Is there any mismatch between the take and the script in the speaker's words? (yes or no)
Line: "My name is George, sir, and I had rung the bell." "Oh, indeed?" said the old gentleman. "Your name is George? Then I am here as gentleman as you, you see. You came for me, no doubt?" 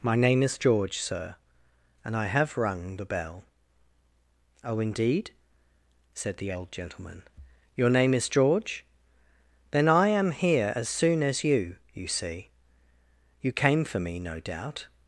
yes